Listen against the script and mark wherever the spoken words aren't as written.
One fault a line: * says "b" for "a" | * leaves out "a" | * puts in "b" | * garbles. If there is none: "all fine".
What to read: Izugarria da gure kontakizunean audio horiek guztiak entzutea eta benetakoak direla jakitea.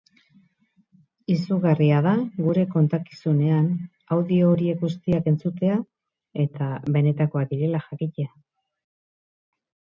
all fine